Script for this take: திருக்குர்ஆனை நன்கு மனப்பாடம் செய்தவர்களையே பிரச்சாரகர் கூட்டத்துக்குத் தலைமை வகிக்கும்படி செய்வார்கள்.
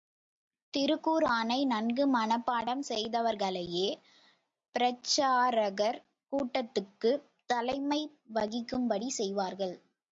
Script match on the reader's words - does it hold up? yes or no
yes